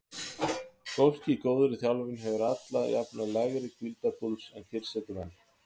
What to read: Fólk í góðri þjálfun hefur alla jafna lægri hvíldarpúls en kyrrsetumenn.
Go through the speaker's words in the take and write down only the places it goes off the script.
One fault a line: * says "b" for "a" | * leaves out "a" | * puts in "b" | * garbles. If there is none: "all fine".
all fine